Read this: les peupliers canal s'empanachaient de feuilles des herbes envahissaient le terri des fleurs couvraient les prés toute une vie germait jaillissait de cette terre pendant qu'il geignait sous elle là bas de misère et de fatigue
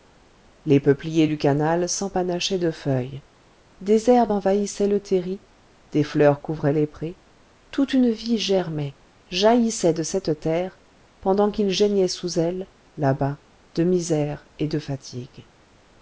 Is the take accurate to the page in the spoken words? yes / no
no